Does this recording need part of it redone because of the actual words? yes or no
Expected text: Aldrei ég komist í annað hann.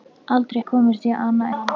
no